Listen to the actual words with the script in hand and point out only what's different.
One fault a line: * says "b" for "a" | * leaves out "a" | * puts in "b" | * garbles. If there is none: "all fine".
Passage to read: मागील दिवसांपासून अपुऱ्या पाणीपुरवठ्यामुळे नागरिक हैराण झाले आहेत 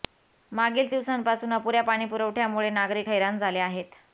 all fine